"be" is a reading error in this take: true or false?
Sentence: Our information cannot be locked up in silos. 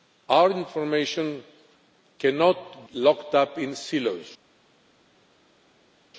true